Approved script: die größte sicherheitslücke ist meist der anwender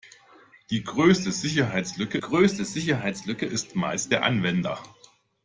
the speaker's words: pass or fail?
fail